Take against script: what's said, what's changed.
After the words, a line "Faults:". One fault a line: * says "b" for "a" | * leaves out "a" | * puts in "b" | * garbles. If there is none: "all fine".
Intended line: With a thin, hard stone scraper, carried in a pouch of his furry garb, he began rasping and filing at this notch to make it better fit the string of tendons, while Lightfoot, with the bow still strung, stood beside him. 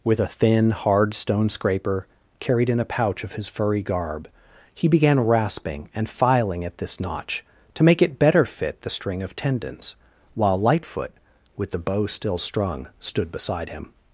With a thin, hard stone scraper, carried in a pouch of his furry garb, he began rasping and filing at this notch to make it better fit the string of tendons, while Lightfoot, with the bow still strung, stood beside him.
Faults:
all fine